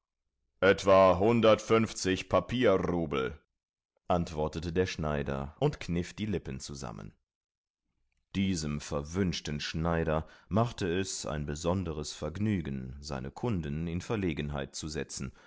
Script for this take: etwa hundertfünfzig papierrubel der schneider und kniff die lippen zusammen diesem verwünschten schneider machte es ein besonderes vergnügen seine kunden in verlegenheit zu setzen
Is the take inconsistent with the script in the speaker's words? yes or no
yes